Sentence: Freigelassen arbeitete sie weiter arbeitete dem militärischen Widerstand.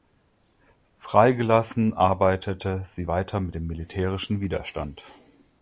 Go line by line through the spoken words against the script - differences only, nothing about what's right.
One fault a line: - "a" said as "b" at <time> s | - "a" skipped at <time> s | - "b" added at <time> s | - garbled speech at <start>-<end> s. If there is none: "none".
- "arbeitete" said as "mit" at 3.4 s